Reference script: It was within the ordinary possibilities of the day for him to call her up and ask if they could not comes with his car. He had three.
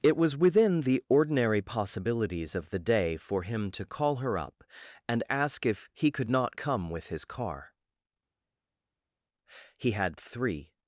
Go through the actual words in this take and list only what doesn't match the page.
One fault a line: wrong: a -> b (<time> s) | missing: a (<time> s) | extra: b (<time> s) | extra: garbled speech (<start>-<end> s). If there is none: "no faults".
wrong: they -> he (5.9 s)
wrong: comes -> come (6.6 s)